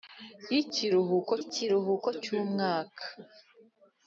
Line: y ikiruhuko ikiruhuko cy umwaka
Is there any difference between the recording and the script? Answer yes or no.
no